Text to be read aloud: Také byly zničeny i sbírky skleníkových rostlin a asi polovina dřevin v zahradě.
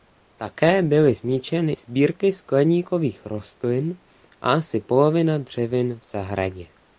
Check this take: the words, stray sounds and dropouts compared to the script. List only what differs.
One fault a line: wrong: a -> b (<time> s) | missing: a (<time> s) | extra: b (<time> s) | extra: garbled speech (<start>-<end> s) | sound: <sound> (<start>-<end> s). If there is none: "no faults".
missing: i (1.7 s)